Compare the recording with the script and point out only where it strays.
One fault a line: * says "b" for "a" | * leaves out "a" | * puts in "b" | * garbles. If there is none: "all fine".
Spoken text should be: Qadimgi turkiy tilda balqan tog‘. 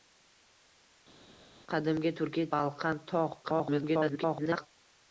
* leaves out "tilda"
* garbles